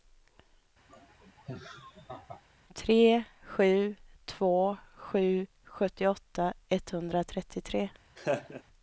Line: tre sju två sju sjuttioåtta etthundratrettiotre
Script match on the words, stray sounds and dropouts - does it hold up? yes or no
no